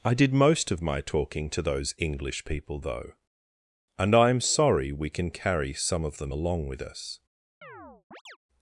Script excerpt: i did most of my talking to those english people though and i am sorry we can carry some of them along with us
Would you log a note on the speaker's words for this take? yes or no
no